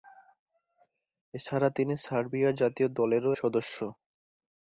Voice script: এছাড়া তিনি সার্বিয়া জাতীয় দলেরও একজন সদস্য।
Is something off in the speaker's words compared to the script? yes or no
yes